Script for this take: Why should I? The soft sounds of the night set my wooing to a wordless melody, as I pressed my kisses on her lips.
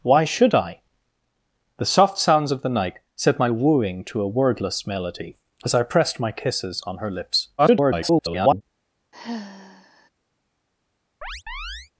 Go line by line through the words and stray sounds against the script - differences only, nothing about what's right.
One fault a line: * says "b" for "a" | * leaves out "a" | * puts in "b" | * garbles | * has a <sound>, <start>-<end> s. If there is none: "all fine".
* garbles
* has a sigh, 9.1-10.1 s
* has a chirp, 11.2-11.9 s